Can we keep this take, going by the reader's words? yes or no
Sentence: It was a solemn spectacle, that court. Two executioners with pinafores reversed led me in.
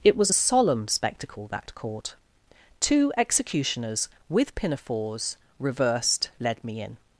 yes